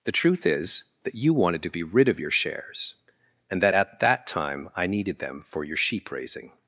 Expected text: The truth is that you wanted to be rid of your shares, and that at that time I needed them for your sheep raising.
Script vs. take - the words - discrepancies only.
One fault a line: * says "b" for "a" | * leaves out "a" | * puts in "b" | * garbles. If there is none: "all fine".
all fine